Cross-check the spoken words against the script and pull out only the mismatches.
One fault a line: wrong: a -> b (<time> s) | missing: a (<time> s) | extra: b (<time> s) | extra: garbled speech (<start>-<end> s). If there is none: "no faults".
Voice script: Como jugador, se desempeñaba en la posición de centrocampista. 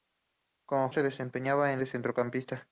missing: jugador (0.9 s)
missing: la posición (1.8 s)